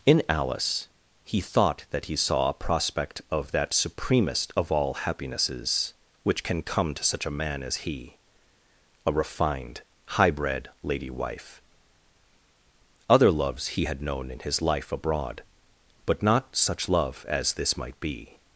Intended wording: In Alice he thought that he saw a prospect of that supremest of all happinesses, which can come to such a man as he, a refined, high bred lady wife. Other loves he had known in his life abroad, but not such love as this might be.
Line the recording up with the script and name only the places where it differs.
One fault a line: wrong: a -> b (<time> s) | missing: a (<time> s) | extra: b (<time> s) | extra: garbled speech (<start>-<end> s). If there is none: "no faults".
no faults